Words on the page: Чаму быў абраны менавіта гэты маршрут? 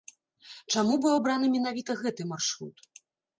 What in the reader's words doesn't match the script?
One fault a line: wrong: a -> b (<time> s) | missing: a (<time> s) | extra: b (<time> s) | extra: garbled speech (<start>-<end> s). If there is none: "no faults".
no faults